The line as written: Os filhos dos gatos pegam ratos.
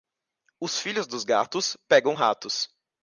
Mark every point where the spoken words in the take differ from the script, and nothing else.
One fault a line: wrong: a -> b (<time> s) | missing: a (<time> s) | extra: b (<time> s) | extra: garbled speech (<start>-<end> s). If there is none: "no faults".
no faults